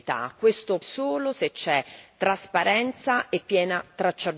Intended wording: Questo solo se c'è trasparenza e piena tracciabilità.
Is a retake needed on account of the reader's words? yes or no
no